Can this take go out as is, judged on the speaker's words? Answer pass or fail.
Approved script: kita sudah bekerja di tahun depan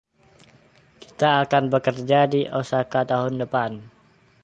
fail